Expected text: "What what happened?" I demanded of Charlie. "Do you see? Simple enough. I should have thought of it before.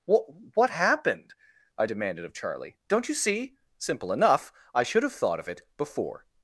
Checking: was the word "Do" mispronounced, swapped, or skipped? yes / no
yes